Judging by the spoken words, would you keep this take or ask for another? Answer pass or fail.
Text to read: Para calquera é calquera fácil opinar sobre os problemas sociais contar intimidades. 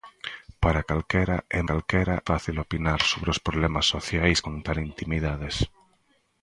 pass